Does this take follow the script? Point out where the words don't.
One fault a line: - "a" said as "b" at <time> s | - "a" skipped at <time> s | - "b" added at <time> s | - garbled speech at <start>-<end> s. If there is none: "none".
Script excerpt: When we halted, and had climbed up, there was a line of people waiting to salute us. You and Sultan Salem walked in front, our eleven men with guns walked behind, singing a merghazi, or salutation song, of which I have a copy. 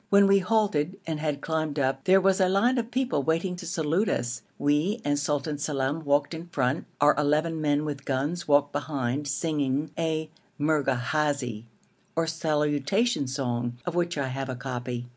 - "You" said as "We" at 4.6 s